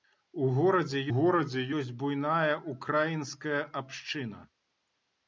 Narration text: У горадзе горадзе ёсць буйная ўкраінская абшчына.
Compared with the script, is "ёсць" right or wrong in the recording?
right